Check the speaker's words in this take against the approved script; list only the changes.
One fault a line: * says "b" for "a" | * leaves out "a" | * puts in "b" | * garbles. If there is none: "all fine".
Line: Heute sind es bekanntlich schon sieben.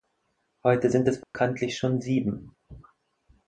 all fine